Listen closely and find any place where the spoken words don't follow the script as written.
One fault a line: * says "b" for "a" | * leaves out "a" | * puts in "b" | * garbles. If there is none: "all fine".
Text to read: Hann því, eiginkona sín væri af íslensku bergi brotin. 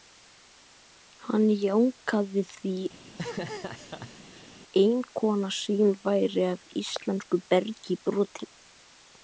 * puts in "jánkaði"